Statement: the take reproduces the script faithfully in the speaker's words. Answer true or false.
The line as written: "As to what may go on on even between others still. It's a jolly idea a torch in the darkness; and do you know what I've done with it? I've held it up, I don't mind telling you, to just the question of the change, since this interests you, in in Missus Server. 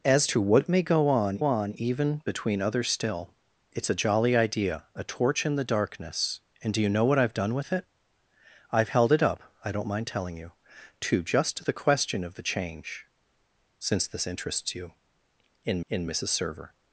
true